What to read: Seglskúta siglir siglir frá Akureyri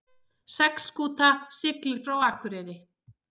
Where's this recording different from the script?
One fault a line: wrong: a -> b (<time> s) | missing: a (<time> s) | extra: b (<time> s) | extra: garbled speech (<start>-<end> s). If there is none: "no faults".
missing: siglir (2.0 s)